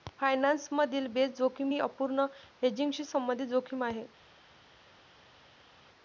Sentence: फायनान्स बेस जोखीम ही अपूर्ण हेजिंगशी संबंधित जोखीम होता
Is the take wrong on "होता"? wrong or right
wrong